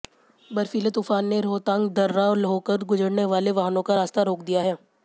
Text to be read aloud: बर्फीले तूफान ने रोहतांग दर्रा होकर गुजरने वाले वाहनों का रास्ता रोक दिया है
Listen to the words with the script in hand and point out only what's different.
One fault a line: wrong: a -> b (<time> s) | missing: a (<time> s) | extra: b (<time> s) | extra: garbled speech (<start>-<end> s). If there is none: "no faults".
no faults